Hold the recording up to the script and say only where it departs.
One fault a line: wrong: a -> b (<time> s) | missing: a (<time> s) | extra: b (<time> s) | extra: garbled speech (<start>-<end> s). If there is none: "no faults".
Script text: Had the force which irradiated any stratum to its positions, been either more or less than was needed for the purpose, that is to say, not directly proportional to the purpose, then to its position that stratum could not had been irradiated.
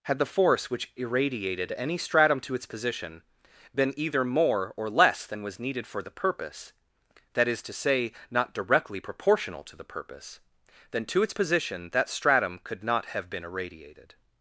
wrong: positions -> position (2.6 s)
wrong: had -> have (13.1 s)